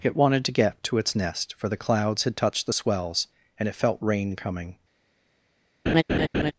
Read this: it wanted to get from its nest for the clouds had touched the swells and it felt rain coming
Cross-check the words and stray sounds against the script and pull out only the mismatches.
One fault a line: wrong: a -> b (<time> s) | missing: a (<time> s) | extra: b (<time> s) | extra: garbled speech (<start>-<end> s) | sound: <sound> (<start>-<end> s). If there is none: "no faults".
wrong: from -> to (0.8 s)
sound: laugh (5.9-6.5 s)